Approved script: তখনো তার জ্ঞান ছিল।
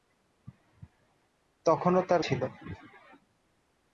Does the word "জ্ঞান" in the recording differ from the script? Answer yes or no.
yes